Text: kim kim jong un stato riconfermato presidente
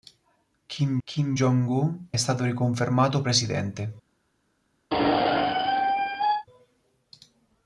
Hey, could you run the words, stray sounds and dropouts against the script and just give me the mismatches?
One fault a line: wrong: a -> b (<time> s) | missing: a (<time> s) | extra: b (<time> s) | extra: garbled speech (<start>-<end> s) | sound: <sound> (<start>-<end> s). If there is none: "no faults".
sound: squeak (4.9-6.5 s)